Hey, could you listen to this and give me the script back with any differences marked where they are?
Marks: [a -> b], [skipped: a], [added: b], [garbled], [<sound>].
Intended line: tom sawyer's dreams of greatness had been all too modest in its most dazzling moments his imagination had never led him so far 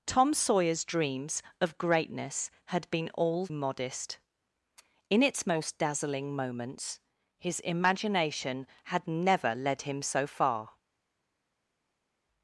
tom sawyer's dreams of greatness had been all [skipped: too] modest in its most dazzling moments his imagination had never led him so far